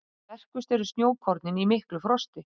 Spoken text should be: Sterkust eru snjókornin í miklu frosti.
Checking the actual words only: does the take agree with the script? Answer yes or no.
yes